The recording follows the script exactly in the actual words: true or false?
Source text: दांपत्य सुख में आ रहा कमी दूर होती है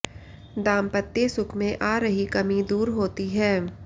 false